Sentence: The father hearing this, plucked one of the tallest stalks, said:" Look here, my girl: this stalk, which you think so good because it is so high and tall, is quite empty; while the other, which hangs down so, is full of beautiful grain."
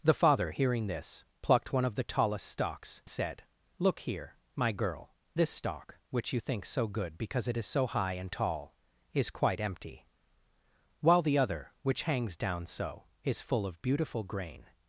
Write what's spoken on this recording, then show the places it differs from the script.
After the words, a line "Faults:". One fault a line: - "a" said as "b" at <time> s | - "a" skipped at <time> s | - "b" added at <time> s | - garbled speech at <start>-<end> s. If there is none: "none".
The father hearing this, plucked one of the tallest stalks, said:" Look here, my girl: this stalk, which you think so good because it is so high and tall, is quite empty; while the other, which hangs down so, is full of beautiful grain."
Faults:
none